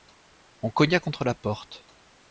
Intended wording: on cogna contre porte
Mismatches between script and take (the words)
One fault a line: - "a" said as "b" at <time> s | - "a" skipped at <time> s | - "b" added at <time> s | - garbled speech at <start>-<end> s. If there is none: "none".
- "la" added at 1.2 s